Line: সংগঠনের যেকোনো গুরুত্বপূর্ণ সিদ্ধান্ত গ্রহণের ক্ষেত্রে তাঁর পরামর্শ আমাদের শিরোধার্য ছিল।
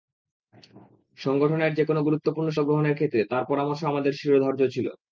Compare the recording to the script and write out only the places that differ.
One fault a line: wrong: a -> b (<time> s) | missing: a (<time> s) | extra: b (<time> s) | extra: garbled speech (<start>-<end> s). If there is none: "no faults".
missing: সিদ্ধান্ত (2.5 s)